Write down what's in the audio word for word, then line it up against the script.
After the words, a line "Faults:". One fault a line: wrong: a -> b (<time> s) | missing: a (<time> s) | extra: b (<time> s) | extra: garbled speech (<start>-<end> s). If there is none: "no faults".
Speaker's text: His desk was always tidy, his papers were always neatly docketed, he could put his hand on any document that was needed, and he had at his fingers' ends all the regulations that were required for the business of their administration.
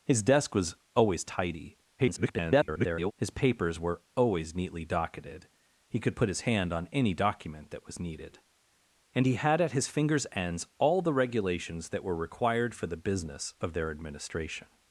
His desk was always tidy, [garbled] his papers were always neatly docketed, he could put his hand on any document that was needed, and he had at his fingers' ends all the regulations that were required for the business of their administration.
Faults:
extra: garbled speech (2.0-3.1 s)